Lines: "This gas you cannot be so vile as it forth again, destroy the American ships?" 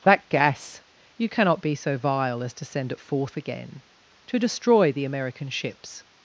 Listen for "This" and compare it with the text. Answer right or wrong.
wrong